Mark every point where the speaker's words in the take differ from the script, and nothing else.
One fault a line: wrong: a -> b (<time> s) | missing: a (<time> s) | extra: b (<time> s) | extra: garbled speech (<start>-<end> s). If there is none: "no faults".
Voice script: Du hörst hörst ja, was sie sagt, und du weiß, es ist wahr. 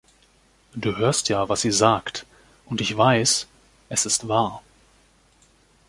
missing: hörst (1.3 s)
wrong: du -> ich (2.8 s)